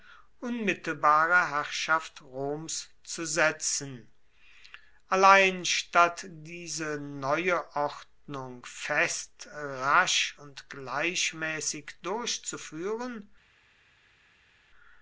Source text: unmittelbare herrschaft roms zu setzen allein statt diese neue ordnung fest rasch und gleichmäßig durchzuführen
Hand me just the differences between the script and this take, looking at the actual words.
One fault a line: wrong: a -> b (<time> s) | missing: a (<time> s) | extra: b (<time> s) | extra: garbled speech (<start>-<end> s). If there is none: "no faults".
no faults